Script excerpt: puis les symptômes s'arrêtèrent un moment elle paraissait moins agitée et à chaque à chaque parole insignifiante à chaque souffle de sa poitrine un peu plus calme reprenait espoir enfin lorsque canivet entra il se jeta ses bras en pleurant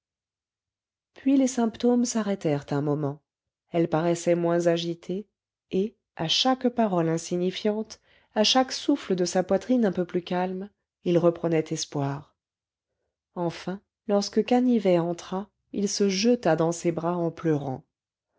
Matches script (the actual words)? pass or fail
fail